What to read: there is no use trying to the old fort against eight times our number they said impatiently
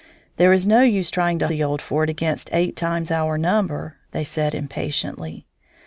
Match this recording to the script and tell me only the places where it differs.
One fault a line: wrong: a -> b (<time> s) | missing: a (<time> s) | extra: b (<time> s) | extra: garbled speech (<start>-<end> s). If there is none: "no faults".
no faults